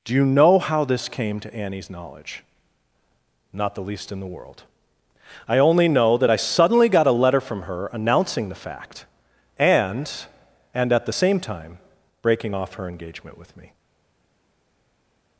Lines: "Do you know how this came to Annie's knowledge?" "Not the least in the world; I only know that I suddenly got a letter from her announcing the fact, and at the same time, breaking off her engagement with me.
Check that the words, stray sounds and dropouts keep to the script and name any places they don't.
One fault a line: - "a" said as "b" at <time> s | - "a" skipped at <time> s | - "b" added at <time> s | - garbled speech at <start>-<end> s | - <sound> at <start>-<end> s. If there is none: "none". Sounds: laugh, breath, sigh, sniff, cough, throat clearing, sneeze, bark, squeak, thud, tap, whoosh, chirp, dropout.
- "and" added at 10.7 s